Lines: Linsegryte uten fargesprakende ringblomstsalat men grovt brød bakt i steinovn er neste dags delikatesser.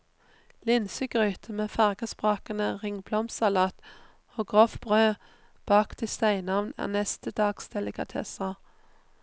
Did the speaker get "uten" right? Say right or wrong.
wrong